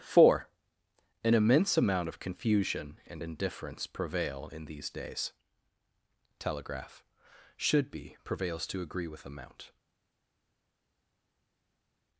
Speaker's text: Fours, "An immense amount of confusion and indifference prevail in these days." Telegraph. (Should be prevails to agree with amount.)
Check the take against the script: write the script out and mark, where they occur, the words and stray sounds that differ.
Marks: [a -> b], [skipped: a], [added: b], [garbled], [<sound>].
[Fours, -> Four] "An immense amount of confusion and indifference prevail in these days." Telegraph. (Should be prevails to agree with amount.)